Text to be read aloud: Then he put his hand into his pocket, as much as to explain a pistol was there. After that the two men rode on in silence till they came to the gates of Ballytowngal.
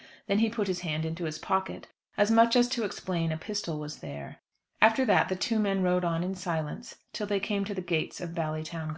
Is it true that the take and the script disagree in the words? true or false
false